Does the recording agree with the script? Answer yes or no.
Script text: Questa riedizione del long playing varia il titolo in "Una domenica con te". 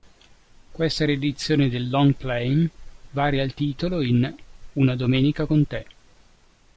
yes